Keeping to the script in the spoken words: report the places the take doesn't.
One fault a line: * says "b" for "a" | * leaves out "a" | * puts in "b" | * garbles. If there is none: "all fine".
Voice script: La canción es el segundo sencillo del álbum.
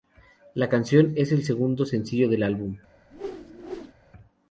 all fine